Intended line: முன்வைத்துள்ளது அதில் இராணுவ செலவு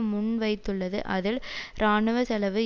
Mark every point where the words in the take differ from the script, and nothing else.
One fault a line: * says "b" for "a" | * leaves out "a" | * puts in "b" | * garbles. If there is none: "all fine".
all fine